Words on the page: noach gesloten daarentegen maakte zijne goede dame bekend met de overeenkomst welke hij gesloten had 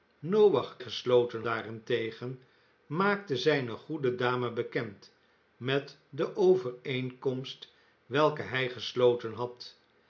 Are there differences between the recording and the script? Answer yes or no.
no